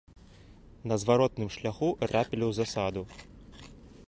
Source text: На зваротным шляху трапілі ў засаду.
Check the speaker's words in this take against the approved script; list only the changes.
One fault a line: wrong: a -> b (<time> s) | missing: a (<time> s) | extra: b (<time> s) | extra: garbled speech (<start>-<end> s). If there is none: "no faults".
no faults